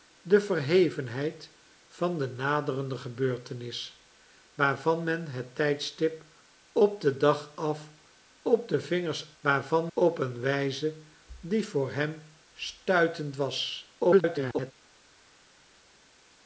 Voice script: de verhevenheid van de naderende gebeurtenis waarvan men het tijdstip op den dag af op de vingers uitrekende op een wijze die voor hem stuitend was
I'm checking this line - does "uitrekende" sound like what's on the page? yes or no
no